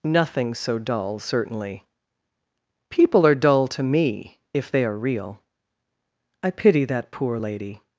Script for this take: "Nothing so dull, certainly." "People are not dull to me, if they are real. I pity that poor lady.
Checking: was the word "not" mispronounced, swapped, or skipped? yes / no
yes